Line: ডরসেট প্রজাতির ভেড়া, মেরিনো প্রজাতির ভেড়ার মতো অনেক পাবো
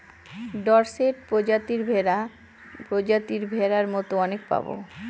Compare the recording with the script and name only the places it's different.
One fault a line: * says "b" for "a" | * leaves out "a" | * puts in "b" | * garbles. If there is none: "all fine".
* leaves out "মেরিনো"